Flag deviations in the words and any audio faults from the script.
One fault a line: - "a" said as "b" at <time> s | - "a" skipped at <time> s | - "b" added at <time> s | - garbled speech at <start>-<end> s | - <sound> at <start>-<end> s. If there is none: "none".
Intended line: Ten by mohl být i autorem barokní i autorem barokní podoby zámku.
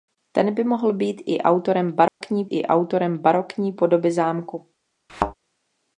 - dropout at 2.1-2.2 s
- thud at 5.1-5.3 s